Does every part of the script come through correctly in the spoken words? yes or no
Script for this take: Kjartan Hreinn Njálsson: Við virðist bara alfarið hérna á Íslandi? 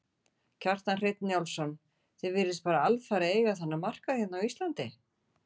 no